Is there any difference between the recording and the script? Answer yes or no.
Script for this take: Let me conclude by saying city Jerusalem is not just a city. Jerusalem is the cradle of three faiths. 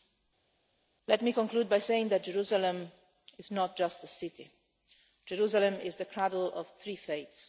yes